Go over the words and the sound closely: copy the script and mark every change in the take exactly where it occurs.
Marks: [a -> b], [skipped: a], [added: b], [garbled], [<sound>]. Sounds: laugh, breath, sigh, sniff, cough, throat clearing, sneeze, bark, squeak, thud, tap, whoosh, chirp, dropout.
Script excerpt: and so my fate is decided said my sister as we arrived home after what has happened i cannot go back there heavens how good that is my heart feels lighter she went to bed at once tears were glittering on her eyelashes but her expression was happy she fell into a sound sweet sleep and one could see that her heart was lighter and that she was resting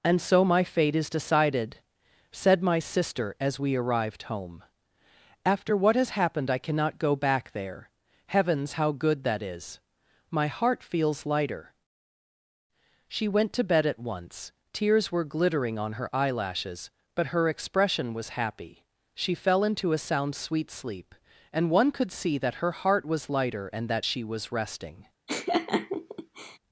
and so my fate is decided said my sister as we arrived home after what has happened i cannot go back there heavens how good that is my heart feels lighter she went to bed at once tears were glittering on her eyelashes but her expression was happy she fell into a sound sweet sleep and one could see that her heart was lighter and that she was resting [laugh]